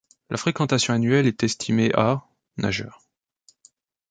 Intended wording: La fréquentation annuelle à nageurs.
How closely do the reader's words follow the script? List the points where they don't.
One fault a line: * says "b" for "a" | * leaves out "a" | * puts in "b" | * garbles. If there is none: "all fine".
* puts in "est estimée"